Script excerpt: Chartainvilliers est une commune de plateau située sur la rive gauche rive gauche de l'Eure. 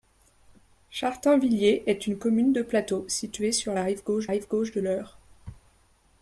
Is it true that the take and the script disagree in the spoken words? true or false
false